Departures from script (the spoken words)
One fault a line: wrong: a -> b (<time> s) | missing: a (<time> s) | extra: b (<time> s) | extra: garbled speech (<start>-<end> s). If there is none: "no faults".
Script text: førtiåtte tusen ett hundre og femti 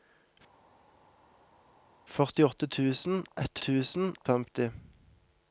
wrong: hundre -> tusen (3.7 s)